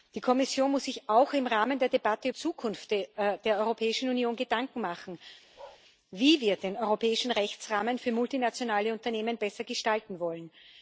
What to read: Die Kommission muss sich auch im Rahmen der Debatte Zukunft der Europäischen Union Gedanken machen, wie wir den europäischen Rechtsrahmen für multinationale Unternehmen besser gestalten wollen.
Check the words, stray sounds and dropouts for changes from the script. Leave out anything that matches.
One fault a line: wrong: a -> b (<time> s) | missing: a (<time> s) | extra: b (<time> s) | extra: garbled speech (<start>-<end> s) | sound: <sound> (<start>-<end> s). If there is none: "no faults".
sound: bark (5.5-5.8 s)